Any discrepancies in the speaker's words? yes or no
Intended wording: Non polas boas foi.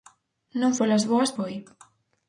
no